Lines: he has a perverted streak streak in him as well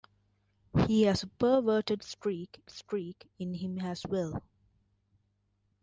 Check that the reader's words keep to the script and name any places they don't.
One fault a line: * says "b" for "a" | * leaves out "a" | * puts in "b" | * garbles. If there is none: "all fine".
all fine